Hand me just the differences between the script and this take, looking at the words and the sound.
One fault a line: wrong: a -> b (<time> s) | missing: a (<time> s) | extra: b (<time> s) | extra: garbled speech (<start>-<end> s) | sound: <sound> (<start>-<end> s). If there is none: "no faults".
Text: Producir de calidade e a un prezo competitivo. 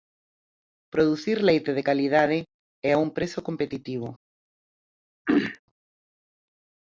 extra: leite (1.4 s)
sound: throat clearing (5.2-5.6 s)